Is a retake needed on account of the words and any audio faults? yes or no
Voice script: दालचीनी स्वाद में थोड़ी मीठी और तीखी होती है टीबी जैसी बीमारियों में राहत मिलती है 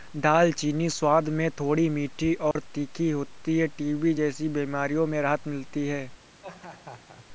yes